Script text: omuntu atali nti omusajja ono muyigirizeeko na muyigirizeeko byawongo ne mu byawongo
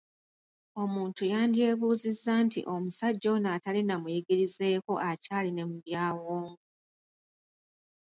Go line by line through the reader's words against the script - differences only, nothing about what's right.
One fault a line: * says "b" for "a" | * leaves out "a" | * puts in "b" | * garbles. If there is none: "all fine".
* says "yandyebuuzizza" for "atali"
* says "atali" for "muyigirizeeko"
* says "akyali" for "byawongo"